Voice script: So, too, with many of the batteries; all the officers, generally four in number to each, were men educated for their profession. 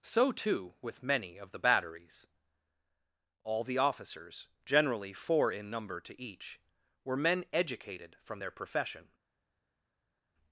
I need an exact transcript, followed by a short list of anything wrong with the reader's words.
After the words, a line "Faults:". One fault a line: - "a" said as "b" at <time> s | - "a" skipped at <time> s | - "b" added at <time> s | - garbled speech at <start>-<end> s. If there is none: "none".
So, too, with many of the batteries; all the officers, generally four in number to each, were men educated from their profession.
Faults:
- "for" said as "from" at 8.2 s